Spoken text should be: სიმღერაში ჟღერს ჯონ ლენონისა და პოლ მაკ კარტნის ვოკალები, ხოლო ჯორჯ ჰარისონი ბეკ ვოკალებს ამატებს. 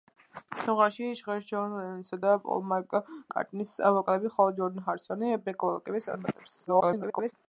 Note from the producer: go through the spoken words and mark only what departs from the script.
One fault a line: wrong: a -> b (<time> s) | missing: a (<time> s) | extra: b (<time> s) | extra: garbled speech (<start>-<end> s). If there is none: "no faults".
extra: garbled speech (6.7-7.3 s)